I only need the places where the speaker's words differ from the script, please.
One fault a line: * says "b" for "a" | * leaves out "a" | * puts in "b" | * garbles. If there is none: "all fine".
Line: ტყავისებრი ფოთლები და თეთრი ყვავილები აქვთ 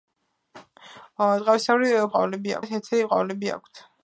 * says "ყვავილები" for "ფოთლები"